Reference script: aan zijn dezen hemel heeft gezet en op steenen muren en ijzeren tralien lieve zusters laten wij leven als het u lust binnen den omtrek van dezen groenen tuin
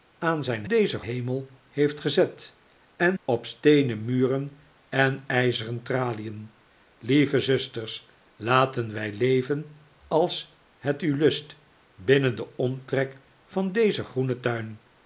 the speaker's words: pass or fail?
pass